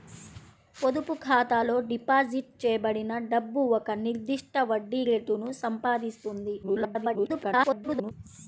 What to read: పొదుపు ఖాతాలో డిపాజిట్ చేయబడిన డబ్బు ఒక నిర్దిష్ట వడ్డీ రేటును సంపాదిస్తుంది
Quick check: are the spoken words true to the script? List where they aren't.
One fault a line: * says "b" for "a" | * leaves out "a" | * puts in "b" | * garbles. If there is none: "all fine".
* garbles